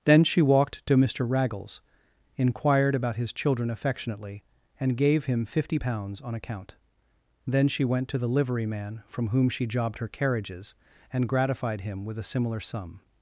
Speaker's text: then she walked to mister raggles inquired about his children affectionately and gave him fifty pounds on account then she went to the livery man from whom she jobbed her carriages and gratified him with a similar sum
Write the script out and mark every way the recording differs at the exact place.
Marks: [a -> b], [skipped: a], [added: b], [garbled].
then she walked to mister raggles inquired about his children affectionately and gave him fifty pounds on account then she went to the livery man from whom she jobbed her carriages and gratified him with a similar sum